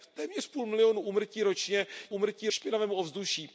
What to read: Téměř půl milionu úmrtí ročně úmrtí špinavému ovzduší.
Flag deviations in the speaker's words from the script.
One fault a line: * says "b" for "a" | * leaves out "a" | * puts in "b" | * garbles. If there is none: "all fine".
all fine